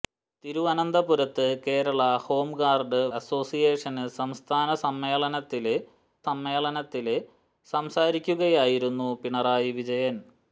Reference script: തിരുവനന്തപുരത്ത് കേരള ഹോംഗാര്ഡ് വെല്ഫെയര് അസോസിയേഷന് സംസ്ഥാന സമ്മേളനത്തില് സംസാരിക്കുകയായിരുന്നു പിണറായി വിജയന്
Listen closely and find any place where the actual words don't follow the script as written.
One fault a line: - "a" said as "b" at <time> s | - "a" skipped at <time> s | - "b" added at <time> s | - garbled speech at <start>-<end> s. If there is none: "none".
- "വെല്ഫെയര്" skipped at 3.0 s
- "സമ്മേളനത്തില്" added at 6.3 s